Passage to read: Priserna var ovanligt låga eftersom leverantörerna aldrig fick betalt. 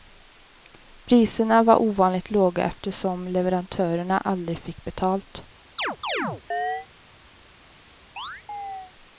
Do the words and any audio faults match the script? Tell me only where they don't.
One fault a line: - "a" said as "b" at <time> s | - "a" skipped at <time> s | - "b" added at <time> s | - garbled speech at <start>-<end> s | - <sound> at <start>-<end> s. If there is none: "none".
- chirp at 5.8-6.9 s
- chirp at 8.2-8.9 s